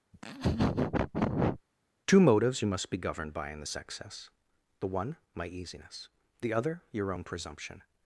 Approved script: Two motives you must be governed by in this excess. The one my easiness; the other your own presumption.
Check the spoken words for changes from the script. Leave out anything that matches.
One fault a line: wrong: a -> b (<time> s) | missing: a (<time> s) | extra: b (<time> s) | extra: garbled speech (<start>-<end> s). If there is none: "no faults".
no faults